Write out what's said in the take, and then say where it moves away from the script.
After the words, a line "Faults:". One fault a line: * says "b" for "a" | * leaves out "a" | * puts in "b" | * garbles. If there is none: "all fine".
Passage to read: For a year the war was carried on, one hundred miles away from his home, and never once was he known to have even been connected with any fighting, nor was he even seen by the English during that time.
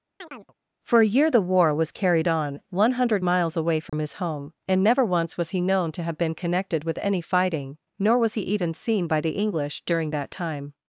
For a year the war was carried on, one hundred miles away from his home, and never once was he known to have been connected with any fighting, nor was he even seen by the English during that time.
Faults:
* leaves out "even"